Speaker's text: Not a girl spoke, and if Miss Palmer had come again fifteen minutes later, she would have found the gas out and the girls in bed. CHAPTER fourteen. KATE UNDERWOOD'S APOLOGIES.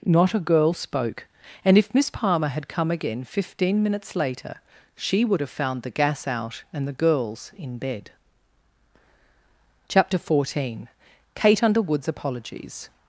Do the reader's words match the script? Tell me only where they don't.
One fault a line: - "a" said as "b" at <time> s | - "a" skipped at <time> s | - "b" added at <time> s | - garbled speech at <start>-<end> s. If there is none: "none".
none